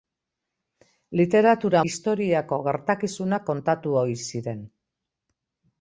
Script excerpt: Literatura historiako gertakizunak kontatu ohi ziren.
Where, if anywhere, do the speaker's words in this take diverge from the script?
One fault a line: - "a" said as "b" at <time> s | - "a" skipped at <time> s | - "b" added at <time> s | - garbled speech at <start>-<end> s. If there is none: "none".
none